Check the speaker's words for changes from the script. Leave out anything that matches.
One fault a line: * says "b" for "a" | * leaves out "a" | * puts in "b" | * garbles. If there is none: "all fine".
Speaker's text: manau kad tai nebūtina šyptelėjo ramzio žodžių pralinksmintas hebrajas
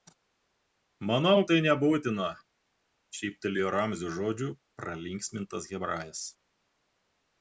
* leaves out "kad"